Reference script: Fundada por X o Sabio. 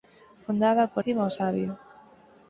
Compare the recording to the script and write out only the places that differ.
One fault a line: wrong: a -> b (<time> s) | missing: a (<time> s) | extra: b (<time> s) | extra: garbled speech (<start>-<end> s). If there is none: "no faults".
no faults